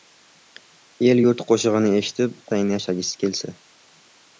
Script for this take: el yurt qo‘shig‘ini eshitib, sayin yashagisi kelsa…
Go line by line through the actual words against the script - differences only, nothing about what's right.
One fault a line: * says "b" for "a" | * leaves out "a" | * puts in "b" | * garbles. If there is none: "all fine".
all fine